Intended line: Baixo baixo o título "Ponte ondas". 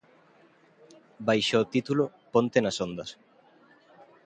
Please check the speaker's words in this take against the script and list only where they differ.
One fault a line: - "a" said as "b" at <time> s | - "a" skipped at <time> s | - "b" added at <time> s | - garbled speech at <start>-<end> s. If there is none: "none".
- "baixo" skipped at 1.6 s
- "nas" added at 2.6 s